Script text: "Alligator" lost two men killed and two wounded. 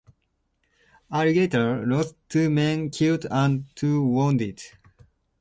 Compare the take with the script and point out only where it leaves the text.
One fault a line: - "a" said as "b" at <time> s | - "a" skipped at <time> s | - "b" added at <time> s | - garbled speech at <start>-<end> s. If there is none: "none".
none